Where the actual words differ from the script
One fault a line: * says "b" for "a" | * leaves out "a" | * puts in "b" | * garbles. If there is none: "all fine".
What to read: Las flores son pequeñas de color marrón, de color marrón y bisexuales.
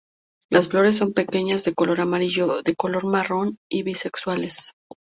* says "amarillo" for "marrón"